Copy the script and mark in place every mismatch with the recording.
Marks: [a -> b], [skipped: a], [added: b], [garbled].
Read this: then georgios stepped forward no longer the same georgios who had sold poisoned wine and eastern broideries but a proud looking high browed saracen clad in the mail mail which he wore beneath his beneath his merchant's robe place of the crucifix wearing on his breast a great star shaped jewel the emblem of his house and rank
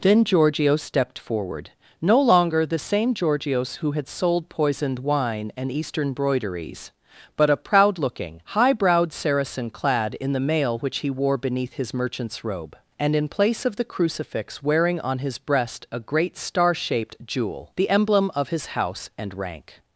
then georgios stepped forward no longer the same georgios who had sold poisoned wine and eastern broideries but a proud looking high browed saracen clad in the mail [skipped: mail] which he wore beneath his [beneath his merchant's robe -> merchant's robe and in] place of the crucifix wearing on his breast a great star shaped jewel the emblem of his house and rank